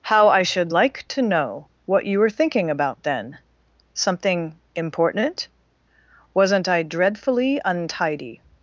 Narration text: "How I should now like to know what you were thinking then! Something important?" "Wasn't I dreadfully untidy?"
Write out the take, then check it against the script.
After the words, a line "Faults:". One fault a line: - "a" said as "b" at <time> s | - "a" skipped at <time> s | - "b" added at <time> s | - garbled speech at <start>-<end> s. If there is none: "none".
"How I should like to know what you were thinking about then! Something important?" "Wasn't I dreadfully untidy?"
Faults:
- "now" skipped at 0.7 s
- "about" added at 2.7 s